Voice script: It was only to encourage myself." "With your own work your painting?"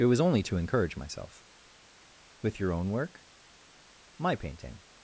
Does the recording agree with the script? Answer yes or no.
no